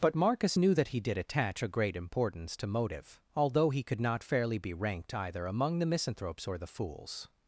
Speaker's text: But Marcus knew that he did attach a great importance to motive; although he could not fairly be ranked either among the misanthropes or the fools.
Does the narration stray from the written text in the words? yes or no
no